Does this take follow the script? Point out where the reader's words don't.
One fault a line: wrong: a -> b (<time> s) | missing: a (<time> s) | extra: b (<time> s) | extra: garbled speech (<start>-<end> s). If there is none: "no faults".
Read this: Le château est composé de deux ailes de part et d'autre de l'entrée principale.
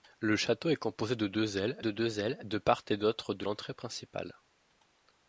extra: deux ailes de (1.9 s)